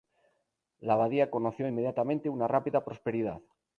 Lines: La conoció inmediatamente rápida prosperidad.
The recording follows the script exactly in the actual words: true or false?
false